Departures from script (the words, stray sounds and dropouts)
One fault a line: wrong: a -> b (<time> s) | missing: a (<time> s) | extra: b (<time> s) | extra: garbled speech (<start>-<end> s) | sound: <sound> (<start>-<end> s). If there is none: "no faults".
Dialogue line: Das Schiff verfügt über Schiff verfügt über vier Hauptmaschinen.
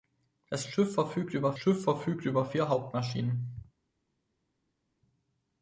no faults